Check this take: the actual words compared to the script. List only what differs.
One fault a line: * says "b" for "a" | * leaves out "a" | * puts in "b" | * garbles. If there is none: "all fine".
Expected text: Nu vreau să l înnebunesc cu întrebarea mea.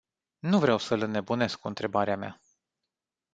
all fine